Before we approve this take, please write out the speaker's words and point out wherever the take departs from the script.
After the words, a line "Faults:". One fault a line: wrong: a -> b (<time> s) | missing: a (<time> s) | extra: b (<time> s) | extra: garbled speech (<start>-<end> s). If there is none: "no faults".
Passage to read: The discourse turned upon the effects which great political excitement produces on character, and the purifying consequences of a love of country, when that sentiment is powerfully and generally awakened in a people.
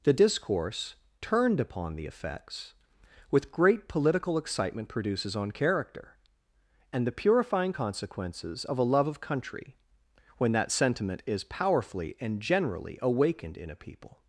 The discourse turned upon the effects with great political excitement produces on character, and the purifying consequences of a love of country, when that sentiment is powerfully and generally awakened in a people.
Faults:
wrong: which -> with (3.3 s)